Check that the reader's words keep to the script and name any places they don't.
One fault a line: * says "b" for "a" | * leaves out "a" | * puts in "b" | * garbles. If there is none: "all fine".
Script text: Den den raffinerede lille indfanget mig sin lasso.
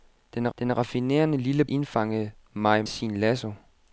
all fine